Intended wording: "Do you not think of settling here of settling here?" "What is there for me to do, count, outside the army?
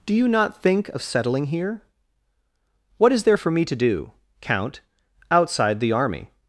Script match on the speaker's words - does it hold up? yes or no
no